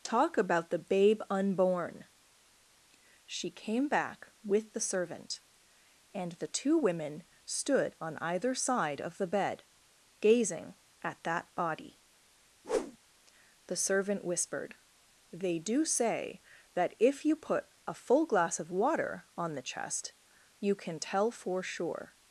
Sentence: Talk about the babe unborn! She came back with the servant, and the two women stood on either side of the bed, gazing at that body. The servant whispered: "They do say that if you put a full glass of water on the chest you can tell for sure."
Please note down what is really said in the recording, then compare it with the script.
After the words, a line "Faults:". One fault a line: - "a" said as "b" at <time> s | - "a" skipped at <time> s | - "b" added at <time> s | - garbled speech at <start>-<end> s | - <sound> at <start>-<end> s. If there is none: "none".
Talk about the babe unborn! She came back with the servant, and the two women stood on either side of the bed, gazing at that body. The servant whispered: "They do say that if you put a full glass of water on the chest you can tell for sure."
Faults:
- whoosh at 12.6-13.0 s